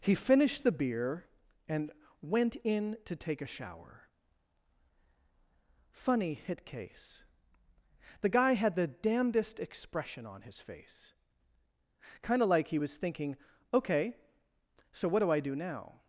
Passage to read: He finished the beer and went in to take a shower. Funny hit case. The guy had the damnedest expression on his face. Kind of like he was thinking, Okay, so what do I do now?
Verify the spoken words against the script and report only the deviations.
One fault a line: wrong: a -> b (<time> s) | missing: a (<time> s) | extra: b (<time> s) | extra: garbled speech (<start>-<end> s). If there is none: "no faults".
no faults